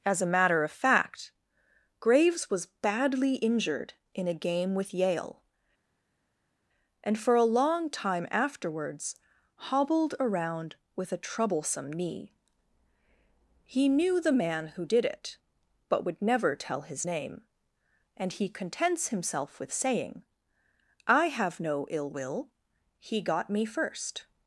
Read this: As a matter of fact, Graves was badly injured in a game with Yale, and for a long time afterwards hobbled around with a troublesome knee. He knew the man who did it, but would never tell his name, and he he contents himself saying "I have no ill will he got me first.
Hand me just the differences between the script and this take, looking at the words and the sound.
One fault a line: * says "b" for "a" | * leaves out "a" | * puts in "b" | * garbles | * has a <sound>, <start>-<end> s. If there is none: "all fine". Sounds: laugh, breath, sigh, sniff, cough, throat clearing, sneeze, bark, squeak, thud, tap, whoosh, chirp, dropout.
* leaves out "he"
* puts in "with"